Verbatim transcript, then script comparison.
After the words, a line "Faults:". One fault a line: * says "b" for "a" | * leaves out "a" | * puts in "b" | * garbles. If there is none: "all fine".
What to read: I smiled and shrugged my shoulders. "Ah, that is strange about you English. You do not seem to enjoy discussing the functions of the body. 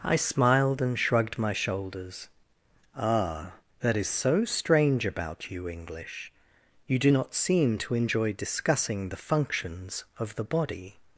I smiled and shrugged my shoulders. "Ah, that is so strange about you English. You do not seem to enjoy discussing the functions of the body.
Faults:
* puts in "so"